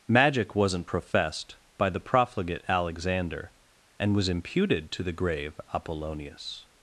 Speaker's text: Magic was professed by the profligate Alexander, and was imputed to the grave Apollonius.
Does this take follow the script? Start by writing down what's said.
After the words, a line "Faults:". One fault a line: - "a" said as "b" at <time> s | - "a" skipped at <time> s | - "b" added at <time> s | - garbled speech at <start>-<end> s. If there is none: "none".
Magic wasn't professed by the profligate Alexander, and was imputed to the grave Apollonius.
Faults:
- "was" said as "wasn't" at 0.6 s